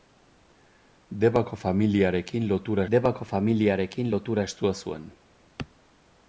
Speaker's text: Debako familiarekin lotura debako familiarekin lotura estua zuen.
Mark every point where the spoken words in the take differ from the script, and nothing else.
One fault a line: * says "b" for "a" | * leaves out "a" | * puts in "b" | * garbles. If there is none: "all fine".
all fine